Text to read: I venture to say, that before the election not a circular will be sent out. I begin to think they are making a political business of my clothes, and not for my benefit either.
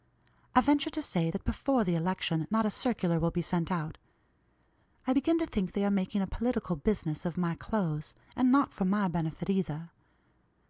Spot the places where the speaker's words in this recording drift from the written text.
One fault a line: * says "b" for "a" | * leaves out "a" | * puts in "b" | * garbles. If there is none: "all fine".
all fine